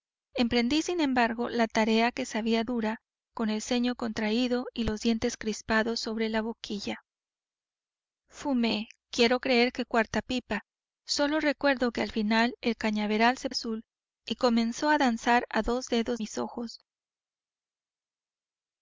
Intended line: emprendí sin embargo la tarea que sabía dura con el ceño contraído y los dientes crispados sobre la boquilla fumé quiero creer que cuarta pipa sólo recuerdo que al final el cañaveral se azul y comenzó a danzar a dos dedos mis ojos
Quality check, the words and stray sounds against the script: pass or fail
pass